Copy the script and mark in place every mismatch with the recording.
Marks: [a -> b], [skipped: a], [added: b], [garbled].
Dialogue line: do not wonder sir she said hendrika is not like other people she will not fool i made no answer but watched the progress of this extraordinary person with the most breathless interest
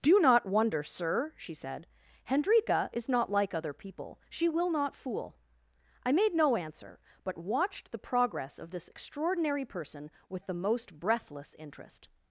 do not wonder sir she said hendrika is not like other people she will not fool i made no answer but watched the progress of this extraordinary person with the most breathless interest